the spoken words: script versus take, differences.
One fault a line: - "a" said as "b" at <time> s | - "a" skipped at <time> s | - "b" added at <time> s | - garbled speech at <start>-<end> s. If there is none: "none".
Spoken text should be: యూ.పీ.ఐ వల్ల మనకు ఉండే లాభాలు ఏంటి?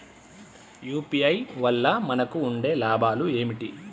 none